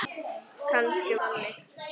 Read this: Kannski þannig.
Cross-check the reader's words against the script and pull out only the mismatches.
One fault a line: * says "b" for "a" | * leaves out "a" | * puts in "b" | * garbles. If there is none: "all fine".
all fine